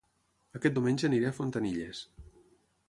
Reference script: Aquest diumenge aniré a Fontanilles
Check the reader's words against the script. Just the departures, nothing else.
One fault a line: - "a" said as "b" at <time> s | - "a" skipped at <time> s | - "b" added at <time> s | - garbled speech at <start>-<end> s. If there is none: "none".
none